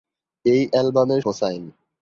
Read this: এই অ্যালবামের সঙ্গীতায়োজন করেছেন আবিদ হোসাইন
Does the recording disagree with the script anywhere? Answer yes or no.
yes